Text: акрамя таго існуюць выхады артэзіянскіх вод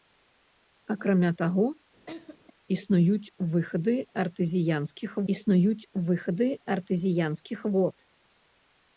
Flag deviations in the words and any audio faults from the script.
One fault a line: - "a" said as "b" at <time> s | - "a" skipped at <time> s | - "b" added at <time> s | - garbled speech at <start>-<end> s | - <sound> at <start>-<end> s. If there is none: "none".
- laugh at 2.1-2.4 s
- "існуюць выхады артэзіянскіх" added at 5.3 s